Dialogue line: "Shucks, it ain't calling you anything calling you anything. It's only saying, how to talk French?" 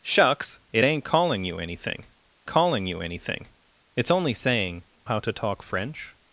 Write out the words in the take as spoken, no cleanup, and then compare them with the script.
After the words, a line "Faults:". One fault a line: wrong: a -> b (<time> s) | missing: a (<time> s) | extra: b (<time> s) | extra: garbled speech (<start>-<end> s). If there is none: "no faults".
"Shucks, it ain't calling you anything calling you anything. It's only saying, how to talk French?"
Faults:
no faults